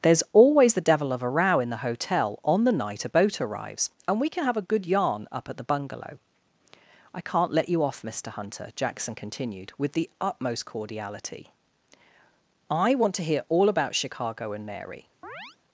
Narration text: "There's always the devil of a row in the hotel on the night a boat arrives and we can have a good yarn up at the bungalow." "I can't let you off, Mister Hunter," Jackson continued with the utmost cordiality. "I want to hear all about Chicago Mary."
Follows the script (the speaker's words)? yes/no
no